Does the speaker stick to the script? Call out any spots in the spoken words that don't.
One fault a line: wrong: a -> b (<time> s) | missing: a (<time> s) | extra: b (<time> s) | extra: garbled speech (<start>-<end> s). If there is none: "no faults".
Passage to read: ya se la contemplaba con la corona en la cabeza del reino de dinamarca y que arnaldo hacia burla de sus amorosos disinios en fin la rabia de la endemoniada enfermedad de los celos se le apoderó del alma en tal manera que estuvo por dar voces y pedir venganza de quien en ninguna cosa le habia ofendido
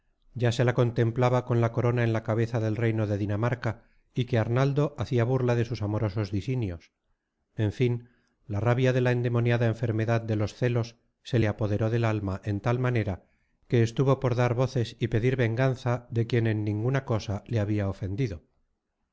no faults